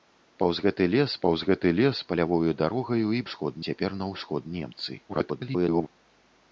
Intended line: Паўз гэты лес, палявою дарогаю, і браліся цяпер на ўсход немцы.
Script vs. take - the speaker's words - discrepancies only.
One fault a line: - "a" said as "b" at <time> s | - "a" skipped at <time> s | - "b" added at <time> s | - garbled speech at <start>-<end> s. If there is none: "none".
- "паўз гэты лес" added at 1.3 s
- "браліся" said as "ўсход" at 3.3 s
- garbled speech at 5.1-5.9 s